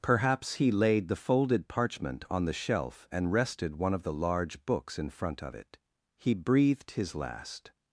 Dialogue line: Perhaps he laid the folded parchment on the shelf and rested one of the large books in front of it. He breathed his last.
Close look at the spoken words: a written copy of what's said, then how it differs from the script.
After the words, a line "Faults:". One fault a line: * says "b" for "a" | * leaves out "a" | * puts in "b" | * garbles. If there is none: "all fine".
Perhaps he laid the folded parchment on the shelf and rested one of the large books in front of it. He breathed his last.
Faults:
all fine